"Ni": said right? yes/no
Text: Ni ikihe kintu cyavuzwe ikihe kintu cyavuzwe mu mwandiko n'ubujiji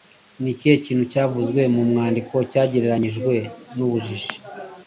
yes